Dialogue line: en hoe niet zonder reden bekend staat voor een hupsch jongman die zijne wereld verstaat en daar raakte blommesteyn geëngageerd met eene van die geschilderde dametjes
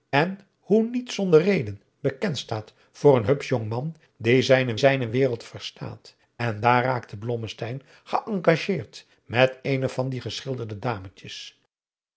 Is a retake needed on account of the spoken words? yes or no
yes